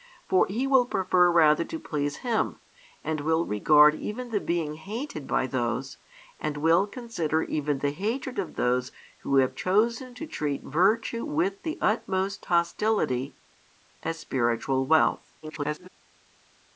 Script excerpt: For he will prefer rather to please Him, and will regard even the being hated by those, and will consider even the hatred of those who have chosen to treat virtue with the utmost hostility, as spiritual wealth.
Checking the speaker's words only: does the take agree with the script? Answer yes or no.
no